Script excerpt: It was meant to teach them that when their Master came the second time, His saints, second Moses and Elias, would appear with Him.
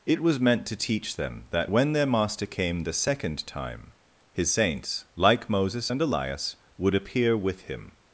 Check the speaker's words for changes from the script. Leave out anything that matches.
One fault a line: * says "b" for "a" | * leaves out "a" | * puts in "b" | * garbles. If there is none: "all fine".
* says "like" for "second"